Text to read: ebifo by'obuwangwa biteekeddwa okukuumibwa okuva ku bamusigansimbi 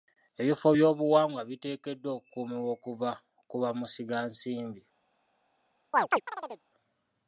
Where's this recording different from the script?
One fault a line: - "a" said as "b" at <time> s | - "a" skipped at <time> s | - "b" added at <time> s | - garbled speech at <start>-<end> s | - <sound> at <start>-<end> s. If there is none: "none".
- chirp at 5.9-6.6 s